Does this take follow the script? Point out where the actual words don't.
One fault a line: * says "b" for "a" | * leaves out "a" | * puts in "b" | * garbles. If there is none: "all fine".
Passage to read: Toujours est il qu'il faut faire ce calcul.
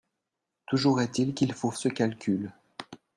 * leaves out "faire"